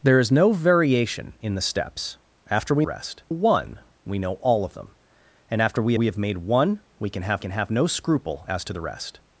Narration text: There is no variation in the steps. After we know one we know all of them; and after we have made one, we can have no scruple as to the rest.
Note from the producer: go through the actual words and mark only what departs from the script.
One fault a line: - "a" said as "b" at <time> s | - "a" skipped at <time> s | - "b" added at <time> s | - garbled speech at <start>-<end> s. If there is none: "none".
- "know" said as "rest" at 2.8 s
- "we" added at 5.9 s
- "can have" added at 7.4 s